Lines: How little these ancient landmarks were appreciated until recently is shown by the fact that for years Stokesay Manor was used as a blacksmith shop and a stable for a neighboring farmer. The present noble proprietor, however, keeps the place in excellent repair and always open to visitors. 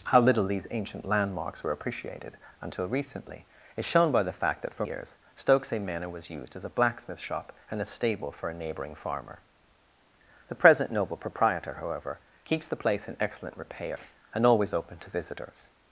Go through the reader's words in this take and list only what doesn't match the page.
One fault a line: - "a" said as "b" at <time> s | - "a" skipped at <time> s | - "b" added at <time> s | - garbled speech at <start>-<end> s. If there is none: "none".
none